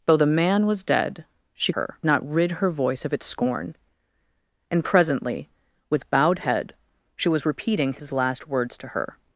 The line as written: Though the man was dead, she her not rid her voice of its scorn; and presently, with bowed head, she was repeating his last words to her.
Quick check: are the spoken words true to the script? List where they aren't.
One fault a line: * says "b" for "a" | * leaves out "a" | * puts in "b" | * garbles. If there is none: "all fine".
all fine